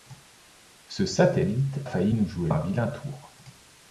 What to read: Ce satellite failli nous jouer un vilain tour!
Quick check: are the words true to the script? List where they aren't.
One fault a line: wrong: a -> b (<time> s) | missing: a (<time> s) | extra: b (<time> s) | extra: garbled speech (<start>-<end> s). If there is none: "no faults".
no faults